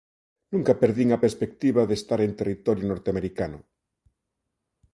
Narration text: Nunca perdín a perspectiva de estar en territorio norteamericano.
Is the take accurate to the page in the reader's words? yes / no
yes